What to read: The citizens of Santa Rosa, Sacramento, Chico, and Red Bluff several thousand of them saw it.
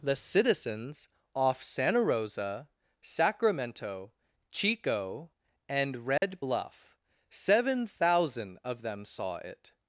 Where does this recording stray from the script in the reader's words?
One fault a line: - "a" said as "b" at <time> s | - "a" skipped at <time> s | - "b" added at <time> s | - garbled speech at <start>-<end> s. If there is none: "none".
- "of" said as "off" at 1.3 s
- "several" said as "seven" at 7.3 s